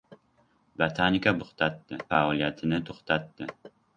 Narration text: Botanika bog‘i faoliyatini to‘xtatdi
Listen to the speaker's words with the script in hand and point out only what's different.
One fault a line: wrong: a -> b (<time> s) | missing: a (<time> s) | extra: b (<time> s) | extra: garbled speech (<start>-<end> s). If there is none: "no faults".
wrong: bog‘i -> to‘xtatdi (1.4 s)